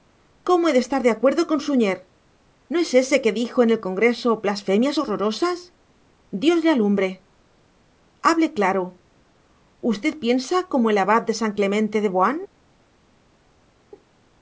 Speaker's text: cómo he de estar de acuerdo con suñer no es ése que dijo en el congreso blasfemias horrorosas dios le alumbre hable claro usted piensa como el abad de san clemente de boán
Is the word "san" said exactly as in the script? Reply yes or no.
yes